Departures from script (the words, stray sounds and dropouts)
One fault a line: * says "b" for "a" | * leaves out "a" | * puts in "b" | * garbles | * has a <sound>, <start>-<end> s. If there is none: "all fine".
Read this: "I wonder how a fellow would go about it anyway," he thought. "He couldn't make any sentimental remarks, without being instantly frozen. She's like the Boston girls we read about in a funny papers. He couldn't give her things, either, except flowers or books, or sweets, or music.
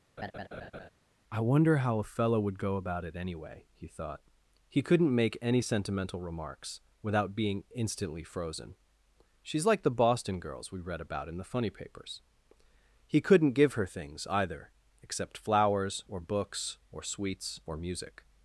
* has a laugh, 0.2-0.9 s
* says "the" for "a"